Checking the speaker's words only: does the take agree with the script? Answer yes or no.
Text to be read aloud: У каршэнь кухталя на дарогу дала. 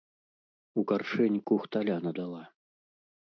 no